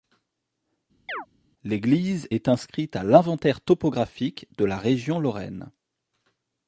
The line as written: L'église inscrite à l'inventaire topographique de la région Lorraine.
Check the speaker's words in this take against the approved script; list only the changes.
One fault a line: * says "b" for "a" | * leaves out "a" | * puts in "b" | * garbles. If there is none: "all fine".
* puts in "est"